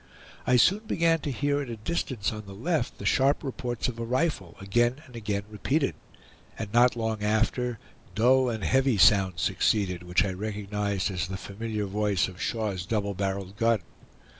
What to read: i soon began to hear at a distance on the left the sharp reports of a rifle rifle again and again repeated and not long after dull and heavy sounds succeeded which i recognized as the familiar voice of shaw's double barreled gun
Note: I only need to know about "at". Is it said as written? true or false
true